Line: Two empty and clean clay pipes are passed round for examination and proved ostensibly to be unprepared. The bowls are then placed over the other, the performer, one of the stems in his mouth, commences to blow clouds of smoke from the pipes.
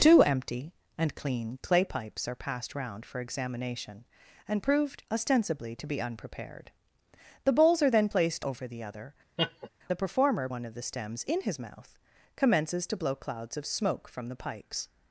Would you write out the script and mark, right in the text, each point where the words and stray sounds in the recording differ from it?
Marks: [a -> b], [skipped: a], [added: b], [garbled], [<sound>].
Two empty and clean clay pipes are passed round for examination and proved ostensibly to be unprepared. The bowls are then placed over the other, [laugh] the performer, one of the stems in his mouth, commences to blow clouds of smoke from the pipes.